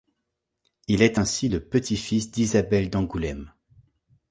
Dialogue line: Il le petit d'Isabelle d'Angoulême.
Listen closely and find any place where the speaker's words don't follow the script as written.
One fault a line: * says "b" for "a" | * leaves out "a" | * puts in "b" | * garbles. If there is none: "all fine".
* puts in "est ainsi"
* puts in "fils"